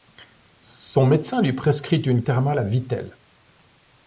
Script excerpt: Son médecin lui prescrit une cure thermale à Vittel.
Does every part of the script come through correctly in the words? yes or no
no